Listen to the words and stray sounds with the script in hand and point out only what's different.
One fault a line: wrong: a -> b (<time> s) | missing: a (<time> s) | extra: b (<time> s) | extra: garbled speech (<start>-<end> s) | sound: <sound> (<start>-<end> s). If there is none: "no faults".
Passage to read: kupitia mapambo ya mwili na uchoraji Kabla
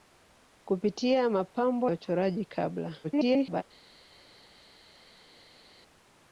missing: ya mwili na (1.9 s)
extra: garbled speech (3.0-3.6 s)